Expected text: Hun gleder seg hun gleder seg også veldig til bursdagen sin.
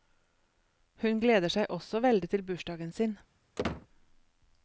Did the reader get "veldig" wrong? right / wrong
right